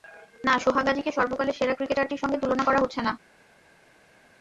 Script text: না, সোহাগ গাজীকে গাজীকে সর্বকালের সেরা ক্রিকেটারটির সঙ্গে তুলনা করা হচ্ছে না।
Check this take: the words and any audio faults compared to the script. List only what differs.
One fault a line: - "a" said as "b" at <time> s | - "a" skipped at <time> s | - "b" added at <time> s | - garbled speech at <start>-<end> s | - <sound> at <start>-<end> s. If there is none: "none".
- "গাজীকে" skipped at 1.1 s